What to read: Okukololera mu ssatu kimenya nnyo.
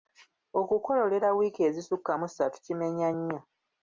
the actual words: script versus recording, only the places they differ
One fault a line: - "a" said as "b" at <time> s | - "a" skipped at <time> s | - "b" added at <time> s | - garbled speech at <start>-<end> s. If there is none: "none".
- "wiiki ezisukka" added at 1.4 s